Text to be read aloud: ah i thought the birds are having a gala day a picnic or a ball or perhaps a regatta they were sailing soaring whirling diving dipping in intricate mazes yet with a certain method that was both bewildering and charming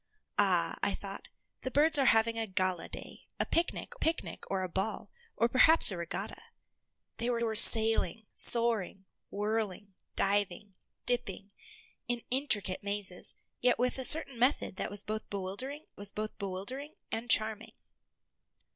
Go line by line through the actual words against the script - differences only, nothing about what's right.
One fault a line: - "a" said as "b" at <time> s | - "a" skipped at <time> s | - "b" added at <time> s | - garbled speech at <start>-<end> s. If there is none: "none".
- "picnic" added at 3.9 s
- "were" added at 7.4 s
- "was both bewildering" added at 16.0 s